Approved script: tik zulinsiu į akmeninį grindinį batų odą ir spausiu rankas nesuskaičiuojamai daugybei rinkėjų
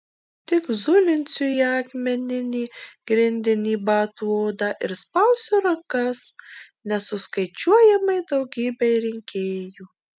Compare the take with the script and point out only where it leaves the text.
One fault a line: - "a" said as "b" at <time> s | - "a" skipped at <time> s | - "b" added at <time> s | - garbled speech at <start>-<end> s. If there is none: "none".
none